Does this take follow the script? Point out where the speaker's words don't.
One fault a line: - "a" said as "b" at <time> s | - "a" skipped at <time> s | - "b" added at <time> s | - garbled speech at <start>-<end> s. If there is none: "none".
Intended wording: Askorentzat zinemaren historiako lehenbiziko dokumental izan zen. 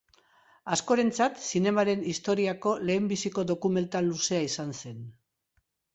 - "luzea" added at 4.1 s